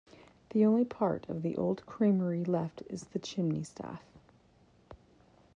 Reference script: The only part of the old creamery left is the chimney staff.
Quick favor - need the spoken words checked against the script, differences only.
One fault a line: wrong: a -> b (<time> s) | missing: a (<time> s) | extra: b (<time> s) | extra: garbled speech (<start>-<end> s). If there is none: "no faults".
no faults